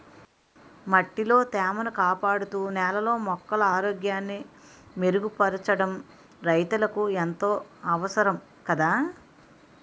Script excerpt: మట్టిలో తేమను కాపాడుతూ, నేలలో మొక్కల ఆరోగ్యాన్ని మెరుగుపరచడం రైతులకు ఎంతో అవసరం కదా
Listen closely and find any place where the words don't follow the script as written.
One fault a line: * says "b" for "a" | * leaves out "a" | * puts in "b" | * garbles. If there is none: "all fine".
all fine